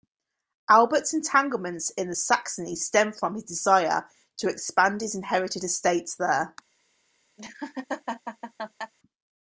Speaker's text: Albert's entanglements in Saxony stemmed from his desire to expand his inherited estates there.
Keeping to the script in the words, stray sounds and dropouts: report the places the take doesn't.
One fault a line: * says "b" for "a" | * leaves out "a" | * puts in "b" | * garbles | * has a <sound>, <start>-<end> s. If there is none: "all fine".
* has a laugh, 7.4-8.9 s